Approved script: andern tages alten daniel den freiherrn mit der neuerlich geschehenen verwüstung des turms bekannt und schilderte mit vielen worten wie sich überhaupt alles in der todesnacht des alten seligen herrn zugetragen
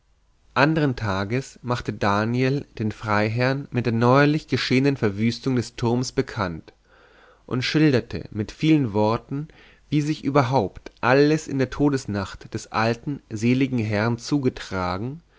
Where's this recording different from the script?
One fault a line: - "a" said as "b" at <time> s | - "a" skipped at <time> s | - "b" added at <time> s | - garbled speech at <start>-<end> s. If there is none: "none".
- "alten" said as "machte" at 1.6 s